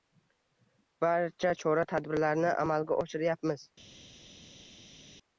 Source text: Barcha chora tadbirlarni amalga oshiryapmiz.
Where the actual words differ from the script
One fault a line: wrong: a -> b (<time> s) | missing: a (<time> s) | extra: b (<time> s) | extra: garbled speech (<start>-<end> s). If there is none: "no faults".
no faults